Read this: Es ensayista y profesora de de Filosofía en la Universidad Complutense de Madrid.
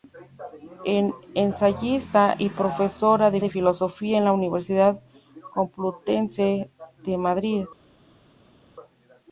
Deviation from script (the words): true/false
false